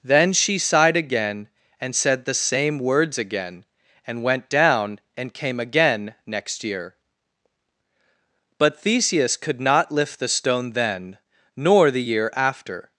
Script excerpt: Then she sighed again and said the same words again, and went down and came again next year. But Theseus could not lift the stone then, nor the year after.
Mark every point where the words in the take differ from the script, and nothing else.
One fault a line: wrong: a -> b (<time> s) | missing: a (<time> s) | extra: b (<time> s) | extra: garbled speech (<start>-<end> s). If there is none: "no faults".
no faults